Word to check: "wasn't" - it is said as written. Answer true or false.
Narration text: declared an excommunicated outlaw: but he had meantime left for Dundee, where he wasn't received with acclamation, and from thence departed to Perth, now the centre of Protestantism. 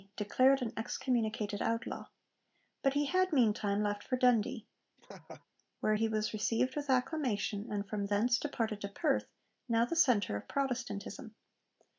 false